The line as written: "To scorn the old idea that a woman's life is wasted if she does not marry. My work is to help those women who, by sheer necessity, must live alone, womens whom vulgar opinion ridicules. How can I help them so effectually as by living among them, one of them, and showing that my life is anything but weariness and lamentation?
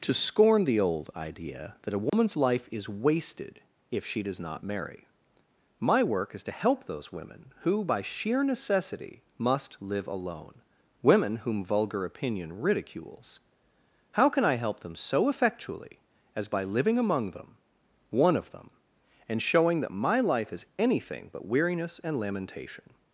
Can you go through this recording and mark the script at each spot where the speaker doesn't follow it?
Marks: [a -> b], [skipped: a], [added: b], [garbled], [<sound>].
"To scorn the old idea that a woman's [dropout] life is wasted if she does not marry. My work is to help those women who, by sheer necessity, must live alone, [womens -> women] whom vulgar opinion ridicules. How can I help them so effectually as by living among them, one of them, and showing that my life is anything but weariness and lamentation?